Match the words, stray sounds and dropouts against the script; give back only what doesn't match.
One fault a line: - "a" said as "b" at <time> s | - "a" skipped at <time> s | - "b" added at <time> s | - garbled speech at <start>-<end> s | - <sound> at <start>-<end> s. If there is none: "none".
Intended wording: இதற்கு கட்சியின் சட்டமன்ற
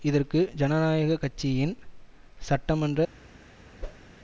- "ஜனநாயக" added at 0.6 s
- whoosh at 3.8-4.1 s